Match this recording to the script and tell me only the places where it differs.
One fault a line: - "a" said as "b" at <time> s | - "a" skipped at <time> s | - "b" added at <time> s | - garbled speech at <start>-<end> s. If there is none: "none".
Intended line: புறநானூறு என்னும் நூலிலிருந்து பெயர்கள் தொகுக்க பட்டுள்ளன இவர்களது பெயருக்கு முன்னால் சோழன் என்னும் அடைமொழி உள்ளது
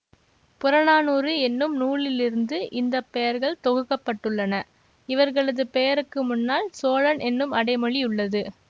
- "இந்த" added at 2.7 s